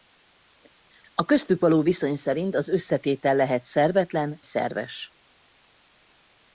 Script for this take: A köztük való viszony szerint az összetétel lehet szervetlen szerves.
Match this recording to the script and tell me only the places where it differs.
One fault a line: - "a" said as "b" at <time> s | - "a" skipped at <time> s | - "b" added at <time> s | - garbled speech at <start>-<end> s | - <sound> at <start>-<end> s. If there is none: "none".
none